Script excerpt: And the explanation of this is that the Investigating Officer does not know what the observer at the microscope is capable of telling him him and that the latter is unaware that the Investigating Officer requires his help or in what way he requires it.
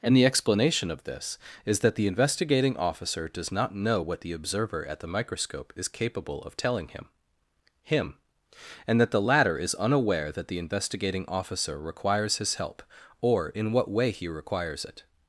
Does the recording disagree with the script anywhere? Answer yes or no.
no